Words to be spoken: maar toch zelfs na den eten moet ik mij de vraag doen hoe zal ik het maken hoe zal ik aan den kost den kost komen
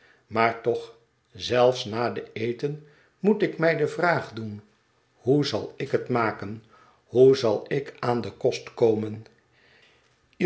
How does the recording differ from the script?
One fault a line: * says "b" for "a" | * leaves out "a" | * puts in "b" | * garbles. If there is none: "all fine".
* leaves out "den kost"